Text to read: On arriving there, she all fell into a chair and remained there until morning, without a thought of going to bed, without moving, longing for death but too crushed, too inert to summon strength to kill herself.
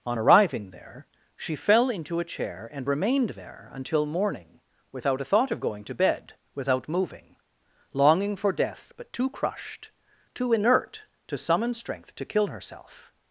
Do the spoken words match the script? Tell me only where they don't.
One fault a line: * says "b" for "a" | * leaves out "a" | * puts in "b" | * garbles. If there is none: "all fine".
* leaves out "all"